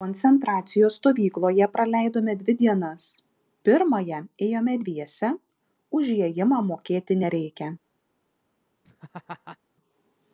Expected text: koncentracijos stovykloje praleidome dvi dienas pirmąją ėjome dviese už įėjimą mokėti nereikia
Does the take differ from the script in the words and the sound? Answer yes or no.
yes